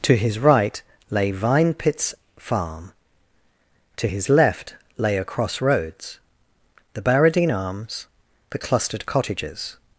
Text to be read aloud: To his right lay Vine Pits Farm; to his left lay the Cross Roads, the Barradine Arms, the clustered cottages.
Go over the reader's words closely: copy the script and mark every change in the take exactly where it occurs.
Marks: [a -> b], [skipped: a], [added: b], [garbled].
To his right lay Vine Pits Farm; to his left lay [the -> a] Cross Roads, the Barradine Arms, the clustered cottages.